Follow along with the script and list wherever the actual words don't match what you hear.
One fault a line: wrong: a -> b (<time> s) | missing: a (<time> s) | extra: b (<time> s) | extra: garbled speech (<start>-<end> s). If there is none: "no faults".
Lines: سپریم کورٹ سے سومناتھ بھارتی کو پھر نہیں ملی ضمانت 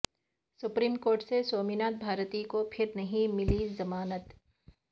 no faults